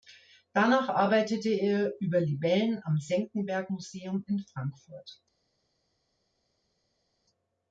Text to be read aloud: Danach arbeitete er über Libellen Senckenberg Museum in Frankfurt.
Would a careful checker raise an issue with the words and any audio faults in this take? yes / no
yes